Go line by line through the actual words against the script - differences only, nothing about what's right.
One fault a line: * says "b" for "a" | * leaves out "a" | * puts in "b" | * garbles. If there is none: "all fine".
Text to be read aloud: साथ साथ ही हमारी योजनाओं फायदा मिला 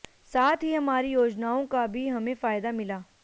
* leaves out "साथ"
* puts in "का भी हमें"